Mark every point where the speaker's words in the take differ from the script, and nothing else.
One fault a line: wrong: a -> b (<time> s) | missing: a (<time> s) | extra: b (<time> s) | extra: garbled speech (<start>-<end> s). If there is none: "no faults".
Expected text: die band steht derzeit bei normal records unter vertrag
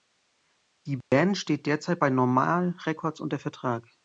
no faults